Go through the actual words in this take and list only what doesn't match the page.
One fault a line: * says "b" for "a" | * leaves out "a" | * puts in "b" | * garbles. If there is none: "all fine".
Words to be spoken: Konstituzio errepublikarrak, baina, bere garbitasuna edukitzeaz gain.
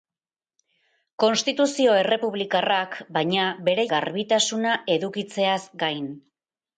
all fine